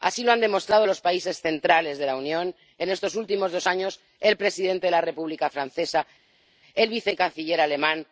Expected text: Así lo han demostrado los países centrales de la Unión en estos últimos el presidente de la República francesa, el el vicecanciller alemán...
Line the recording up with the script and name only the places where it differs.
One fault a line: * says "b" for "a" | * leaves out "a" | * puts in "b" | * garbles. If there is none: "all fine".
* puts in "dos años"
* leaves out "el"